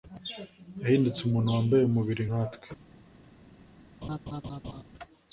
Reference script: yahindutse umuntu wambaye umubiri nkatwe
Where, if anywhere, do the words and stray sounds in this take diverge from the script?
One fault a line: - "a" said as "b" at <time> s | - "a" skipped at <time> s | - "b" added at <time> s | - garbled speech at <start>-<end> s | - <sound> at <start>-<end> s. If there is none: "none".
- laugh at 4.0-4.8 s